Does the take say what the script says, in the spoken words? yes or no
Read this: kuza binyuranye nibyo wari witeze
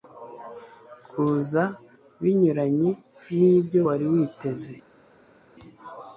yes